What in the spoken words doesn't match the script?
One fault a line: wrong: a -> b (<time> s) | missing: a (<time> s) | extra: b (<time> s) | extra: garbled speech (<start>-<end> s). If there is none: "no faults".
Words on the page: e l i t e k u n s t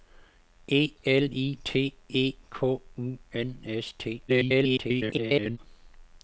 extra: garbled speech (4.3-5.6 s)